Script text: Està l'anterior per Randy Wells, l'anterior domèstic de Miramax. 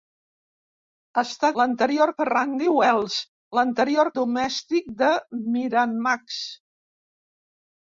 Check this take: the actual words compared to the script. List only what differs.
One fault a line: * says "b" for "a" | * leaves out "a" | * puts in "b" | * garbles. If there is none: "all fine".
all fine